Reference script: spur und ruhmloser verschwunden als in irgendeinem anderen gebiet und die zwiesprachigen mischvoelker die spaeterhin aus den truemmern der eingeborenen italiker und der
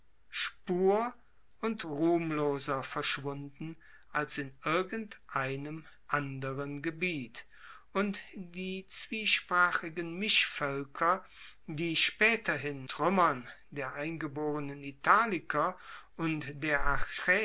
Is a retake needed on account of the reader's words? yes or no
yes